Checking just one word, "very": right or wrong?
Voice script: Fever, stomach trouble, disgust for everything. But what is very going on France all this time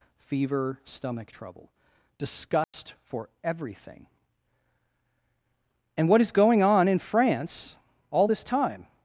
wrong